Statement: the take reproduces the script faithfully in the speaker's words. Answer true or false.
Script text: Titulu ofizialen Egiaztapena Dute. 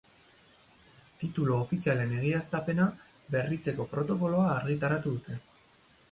false